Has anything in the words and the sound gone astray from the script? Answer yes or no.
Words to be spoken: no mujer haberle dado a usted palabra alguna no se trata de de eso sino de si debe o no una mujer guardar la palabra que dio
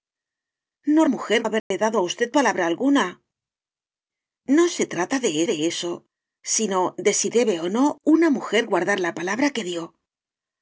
yes